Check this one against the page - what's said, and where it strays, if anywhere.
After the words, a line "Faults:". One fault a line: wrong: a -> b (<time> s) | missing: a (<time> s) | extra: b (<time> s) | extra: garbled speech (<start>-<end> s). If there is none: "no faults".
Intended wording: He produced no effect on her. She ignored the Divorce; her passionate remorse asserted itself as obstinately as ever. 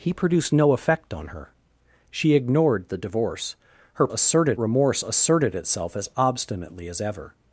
He produced no effect on her. She ignored the Divorce; her asserted remorse asserted itself as obstinately as ever.
Faults:
wrong: passionate -> asserted (4.1 s)